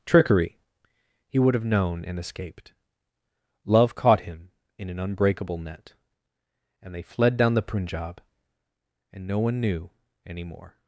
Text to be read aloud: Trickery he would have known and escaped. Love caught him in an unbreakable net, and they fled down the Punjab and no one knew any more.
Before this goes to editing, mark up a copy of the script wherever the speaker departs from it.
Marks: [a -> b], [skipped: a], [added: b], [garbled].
Trickery he would have known and escaped. Love caught him in an unbreakable net, and they fled down the Punjab and no one knew any more.